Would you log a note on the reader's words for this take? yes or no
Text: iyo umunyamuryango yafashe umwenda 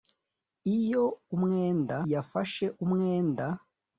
yes